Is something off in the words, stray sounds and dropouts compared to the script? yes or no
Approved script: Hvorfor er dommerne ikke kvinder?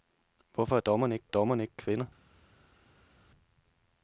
yes